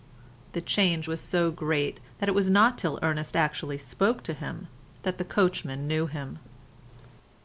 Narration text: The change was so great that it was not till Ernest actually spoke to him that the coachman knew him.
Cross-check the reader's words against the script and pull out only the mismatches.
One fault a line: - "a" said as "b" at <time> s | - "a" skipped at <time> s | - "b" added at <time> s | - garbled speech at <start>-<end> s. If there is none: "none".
none